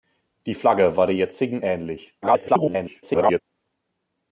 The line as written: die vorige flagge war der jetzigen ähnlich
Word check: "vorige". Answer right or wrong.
wrong